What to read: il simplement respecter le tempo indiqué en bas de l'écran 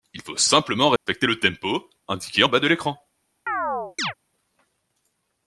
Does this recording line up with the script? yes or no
no